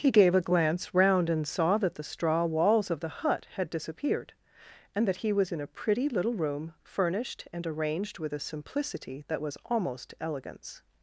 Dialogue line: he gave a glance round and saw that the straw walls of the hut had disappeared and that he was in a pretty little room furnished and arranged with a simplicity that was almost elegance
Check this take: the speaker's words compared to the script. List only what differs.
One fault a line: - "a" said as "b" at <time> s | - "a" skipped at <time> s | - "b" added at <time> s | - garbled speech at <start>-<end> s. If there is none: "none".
none